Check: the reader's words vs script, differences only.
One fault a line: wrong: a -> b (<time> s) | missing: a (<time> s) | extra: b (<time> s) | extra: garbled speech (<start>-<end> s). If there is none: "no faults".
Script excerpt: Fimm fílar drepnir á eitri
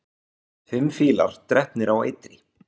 no faults